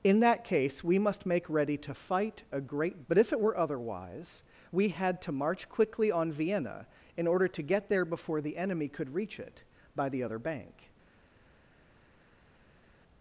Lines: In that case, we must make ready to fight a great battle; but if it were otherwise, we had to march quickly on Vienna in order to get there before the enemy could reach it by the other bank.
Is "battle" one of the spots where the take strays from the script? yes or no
yes